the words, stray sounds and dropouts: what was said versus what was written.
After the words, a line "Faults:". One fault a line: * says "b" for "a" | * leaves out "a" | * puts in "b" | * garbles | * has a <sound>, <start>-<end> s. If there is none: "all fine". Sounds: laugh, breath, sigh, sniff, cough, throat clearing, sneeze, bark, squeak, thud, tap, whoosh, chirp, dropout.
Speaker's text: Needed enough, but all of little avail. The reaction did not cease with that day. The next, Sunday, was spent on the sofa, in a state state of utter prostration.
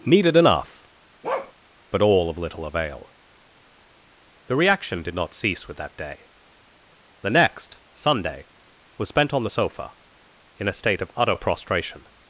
Needed enough, but all of little avail. The reaction did not cease with that day. The next, Sunday, was spent on the sofa, in a state of utter prostration.
Faults:
* has a bark, 1.2-1.5 s
* leaves out "state"